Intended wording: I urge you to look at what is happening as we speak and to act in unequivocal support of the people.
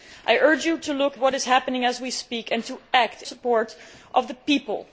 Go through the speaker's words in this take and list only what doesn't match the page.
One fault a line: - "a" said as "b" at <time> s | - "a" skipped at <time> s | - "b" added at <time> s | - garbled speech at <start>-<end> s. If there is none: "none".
- "at" skipped at 1.1 s
- "in unequivocal" skipped at 3.2 s